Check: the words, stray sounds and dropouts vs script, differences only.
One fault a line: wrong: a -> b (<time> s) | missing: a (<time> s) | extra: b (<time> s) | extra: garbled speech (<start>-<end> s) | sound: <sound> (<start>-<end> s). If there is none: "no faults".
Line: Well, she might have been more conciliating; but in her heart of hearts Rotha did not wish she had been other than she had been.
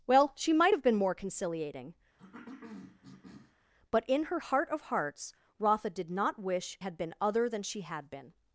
sound: cough (2.2-3.6 s)
missing: she (6.8 s)